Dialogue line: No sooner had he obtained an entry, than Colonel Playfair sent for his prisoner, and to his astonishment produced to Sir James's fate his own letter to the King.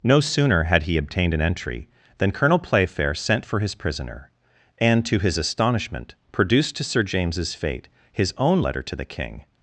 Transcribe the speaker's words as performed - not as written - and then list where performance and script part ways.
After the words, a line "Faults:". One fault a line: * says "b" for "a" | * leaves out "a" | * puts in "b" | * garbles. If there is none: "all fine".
No sooner had he obtained an entry, than Colonel Playfair sent for his prisoner, and to his astonishment produced to Sir James's fate his own letter to the King.
Faults:
all fine